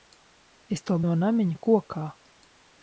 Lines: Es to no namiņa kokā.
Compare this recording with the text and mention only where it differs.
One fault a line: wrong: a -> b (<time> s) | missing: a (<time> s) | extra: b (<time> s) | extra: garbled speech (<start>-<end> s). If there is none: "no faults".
no faults